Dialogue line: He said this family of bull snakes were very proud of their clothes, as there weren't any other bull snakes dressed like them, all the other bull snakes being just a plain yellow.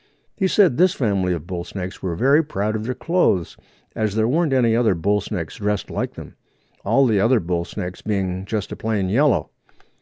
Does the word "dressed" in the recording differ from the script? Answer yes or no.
no